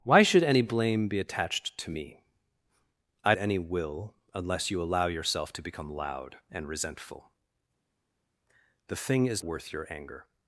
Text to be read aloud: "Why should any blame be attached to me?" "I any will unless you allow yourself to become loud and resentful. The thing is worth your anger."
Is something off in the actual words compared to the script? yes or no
no